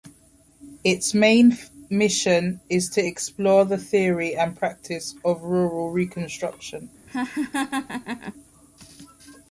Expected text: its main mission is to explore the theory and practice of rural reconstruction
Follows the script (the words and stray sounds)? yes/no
no